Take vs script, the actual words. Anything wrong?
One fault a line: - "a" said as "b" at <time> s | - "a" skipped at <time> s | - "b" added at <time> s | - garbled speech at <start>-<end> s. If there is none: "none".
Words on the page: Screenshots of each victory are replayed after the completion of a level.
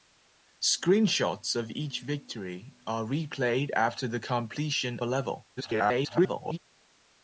- "of" skipped at 5.0 s
- garbled speech at 5.6-6.6 s